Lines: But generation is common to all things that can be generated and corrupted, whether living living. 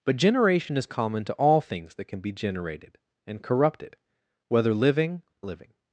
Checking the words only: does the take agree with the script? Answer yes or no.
yes